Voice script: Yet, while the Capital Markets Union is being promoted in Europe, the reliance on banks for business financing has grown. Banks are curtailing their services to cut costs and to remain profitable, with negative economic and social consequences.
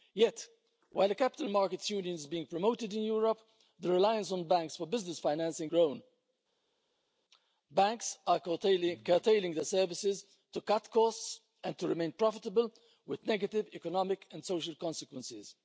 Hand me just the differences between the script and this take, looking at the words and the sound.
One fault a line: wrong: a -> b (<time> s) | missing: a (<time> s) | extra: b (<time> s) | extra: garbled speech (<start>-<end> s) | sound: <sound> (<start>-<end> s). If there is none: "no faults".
missing: has (5.7 s)